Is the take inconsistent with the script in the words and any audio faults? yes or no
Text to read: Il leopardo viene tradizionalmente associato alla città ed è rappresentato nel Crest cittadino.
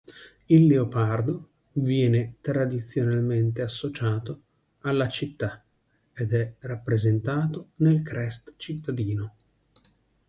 no